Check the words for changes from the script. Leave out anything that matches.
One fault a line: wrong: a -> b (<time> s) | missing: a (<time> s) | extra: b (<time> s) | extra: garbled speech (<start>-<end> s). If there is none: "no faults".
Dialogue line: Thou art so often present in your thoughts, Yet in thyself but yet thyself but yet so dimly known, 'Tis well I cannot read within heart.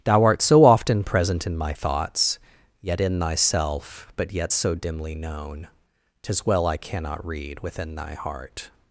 wrong: your -> my (1.6 s)
missing: thyself but yet (4.5 s)
extra: thy (7.9 s)